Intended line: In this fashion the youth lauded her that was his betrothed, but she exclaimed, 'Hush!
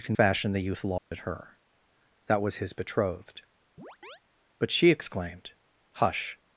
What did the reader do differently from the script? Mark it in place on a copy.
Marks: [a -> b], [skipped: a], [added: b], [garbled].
In [skipped: this] fashion the youth lauded her that was his betrothed, but she exclaimed, 'Hush!